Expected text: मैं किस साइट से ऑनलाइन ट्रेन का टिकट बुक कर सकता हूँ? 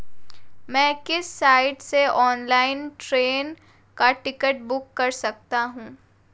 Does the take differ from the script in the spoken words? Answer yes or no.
no